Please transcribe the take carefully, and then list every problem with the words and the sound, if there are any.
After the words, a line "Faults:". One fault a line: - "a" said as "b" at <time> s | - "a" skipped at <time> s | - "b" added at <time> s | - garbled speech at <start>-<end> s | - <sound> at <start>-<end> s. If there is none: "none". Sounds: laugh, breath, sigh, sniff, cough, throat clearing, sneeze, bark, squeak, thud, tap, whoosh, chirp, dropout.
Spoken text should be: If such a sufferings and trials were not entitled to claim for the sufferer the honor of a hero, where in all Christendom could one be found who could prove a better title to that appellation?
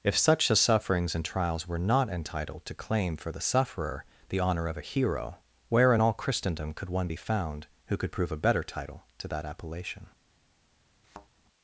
If such a sufferings and trials were not entitled to claim for the sufferer the honor of a hero, where in all Christendom could one be found who could prove a better title to that appellation?
Faults:
- thud at 11.0-11.3 s